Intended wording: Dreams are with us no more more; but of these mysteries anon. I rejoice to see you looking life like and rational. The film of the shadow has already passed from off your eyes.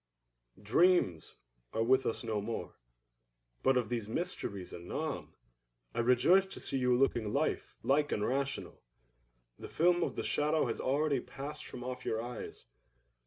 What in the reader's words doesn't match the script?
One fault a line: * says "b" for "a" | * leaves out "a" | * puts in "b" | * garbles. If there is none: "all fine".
* leaves out "more"